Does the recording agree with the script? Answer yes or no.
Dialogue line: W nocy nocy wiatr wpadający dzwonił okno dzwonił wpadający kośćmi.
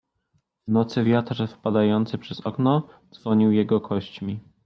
no